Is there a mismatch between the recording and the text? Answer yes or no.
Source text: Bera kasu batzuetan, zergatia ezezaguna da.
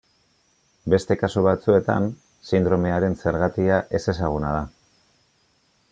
yes